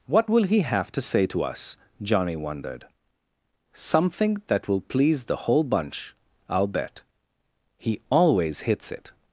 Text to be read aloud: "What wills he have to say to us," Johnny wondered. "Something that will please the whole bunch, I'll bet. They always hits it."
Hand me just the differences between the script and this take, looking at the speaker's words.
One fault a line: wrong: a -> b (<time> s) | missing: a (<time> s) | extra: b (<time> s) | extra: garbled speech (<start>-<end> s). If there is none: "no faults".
wrong: wills -> will (0.3 s)
wrong: They -> He (7.8 s)